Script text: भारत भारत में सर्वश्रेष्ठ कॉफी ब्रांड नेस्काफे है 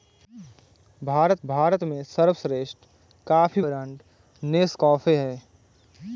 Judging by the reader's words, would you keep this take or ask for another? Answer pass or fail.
pass